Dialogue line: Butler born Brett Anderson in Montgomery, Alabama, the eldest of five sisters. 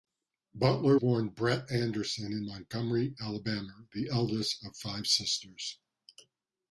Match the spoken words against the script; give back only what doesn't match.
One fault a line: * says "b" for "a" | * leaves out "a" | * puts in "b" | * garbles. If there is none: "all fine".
all fine